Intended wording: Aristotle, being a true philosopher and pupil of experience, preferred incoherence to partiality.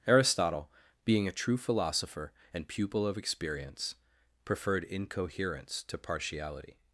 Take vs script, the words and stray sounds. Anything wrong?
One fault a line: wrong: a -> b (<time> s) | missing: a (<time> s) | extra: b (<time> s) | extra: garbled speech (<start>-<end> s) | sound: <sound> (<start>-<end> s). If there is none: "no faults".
no faults